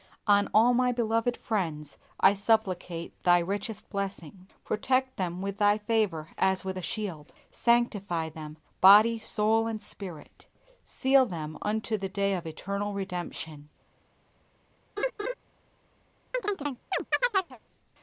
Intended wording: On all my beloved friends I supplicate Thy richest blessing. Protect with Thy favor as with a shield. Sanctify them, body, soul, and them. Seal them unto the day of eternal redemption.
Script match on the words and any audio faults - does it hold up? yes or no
no